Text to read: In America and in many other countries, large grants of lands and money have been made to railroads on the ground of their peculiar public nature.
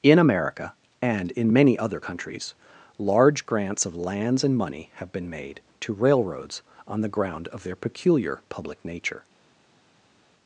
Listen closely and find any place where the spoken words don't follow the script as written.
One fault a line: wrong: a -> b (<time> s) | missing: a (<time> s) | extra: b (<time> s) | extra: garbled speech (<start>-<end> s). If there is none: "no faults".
no faults